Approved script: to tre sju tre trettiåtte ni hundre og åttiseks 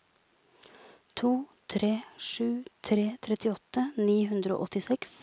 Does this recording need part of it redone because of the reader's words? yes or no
no